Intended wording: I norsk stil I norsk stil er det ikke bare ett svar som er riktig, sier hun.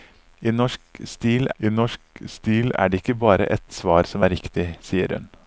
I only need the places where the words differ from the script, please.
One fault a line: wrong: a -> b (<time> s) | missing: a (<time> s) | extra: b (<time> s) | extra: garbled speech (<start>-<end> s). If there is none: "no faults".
no faults